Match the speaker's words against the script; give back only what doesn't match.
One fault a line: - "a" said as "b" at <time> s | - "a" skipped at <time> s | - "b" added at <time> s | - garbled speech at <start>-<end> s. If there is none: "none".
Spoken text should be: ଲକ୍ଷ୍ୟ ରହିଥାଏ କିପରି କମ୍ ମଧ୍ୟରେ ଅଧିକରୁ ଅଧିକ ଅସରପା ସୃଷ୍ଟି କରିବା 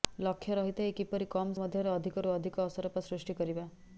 none